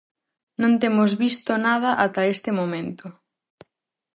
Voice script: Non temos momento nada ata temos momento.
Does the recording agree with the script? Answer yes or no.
no